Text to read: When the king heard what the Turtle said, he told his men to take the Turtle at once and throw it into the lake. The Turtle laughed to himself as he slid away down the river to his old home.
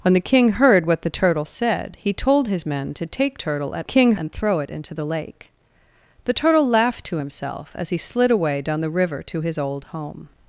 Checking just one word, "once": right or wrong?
wrong